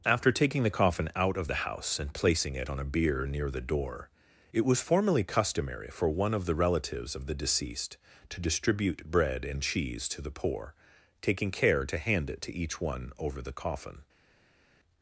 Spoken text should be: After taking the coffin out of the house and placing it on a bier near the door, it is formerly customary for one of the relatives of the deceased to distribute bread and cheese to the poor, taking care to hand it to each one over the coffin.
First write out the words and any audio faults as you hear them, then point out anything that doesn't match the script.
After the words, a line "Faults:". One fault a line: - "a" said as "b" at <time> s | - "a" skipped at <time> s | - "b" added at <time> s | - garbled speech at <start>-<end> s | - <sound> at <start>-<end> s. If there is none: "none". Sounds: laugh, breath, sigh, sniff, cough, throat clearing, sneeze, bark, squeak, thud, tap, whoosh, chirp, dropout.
After taking the coffin out of the house and placing it on a bier near the door, it was formerly customary for one of the relatives of the deceased to distribute bread and cheese to the poor, taking care to hand it to each one over the coffin.
Faults:
- "is" said as "was" at 4.6 s